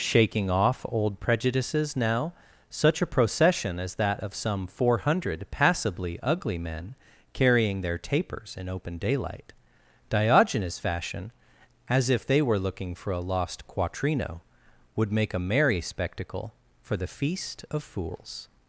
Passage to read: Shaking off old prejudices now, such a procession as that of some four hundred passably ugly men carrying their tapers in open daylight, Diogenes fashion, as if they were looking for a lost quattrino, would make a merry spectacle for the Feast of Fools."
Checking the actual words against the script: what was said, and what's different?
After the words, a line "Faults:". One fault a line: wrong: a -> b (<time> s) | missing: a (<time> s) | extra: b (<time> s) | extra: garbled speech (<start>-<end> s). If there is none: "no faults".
Shaking off old prejudices now, such a procession as that of some four hundred passably ugly men carrying their tapers in open daylight, Diogenes fashion, as if they were looking for a lost quattrino, would make a merry spectacle for the Feast of Fools."
Faults:
no faults